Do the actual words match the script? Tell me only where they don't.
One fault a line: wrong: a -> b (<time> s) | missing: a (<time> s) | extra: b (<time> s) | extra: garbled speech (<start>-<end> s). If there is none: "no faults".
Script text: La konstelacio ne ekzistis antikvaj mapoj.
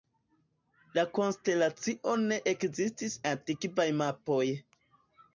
no faults